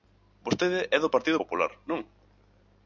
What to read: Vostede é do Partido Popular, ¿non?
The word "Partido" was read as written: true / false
true